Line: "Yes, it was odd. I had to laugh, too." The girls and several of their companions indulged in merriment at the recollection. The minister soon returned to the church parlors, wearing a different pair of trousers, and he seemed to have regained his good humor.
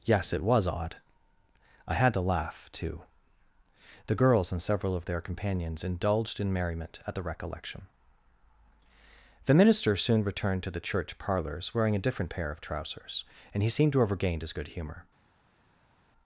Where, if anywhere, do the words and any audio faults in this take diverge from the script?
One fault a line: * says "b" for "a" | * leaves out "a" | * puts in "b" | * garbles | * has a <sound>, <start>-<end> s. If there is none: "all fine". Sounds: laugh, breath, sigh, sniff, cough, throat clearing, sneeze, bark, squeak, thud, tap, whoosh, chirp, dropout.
all fine